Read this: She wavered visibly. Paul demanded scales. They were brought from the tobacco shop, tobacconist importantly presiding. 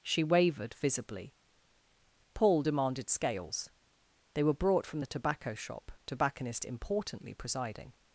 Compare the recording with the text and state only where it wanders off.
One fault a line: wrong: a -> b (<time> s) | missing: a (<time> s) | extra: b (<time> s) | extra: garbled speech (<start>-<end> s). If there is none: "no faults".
no faults